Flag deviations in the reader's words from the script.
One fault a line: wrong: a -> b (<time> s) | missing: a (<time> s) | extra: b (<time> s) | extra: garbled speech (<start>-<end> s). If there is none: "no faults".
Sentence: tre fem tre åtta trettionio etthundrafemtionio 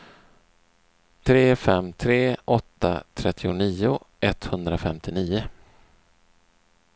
no faults